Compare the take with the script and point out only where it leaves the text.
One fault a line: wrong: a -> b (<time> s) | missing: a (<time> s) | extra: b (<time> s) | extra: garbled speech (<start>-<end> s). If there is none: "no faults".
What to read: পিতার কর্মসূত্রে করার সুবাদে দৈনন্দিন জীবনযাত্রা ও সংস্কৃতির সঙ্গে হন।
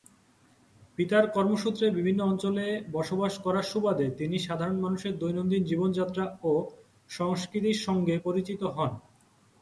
extra: বিভিন্ন অঞ্চলে বসবাস (1.9 s)
extra: তিনি সাধারণ মানুষের (4.1 s)
extra: পরিচিত (8.2 s)